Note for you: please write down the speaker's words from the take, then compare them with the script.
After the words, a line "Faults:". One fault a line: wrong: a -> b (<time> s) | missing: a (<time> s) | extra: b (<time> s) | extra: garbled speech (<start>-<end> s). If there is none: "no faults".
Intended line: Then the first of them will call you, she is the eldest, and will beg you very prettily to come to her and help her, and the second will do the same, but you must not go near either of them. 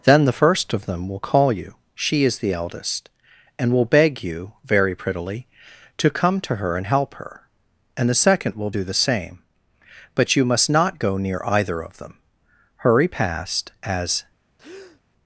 Then the first of them will call you, she is the eldest, and will beg you very prettily to come to her and help her, and the second will do the same, but you must not go near either of them. Hurry past, as
Faults:
extra: Hurry past as (12.8 s)